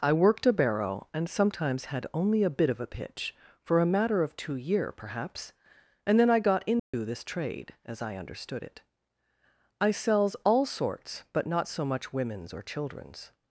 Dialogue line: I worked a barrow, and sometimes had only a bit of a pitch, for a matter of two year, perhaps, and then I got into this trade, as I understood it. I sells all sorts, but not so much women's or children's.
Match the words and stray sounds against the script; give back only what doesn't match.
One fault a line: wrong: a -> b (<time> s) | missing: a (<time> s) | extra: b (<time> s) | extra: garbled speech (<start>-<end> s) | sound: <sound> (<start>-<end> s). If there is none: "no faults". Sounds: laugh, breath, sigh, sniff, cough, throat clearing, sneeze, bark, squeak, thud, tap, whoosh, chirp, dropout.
sound: dropout (6.8-6.9 s)